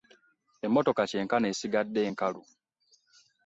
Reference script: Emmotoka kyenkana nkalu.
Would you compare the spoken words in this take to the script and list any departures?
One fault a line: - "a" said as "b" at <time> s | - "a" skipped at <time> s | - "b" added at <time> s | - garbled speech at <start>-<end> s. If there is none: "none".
- "esigadde" added at 1.5 s